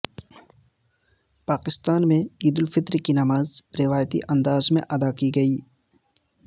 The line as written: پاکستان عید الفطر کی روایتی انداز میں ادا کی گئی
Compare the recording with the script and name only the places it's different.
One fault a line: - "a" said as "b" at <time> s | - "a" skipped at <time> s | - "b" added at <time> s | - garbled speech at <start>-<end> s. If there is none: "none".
- "میں" added at 2.1 s
- "نماز" added at 3.1 s